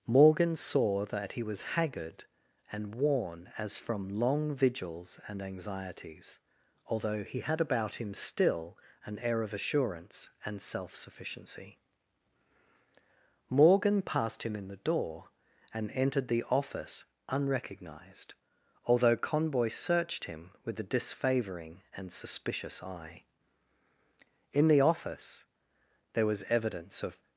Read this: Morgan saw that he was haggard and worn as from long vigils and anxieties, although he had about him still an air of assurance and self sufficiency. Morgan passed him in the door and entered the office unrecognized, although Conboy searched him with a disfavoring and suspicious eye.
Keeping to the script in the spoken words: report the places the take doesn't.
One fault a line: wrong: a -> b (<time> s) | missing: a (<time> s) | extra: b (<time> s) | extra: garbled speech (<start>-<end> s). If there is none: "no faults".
extra: In the office there was evidence of (24.5 s)